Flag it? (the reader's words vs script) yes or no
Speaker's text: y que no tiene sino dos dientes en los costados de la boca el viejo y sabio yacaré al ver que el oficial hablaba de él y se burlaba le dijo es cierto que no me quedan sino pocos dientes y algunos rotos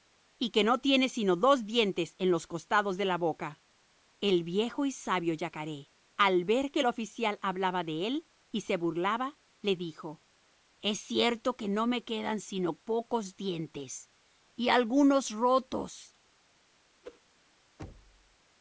no